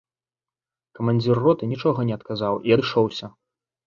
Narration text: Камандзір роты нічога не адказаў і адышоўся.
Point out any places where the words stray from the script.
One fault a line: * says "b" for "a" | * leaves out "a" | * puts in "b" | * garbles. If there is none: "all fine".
all fine